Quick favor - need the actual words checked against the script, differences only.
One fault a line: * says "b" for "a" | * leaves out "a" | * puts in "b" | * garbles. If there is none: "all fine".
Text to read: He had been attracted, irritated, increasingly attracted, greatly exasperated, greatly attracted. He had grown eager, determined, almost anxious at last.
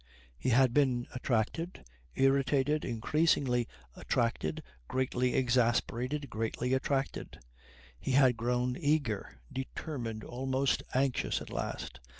all fine